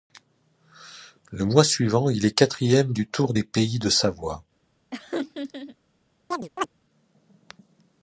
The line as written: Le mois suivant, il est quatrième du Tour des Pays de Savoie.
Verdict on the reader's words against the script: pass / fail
pass